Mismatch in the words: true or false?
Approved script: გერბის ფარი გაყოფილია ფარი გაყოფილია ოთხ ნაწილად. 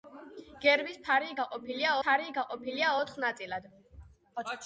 false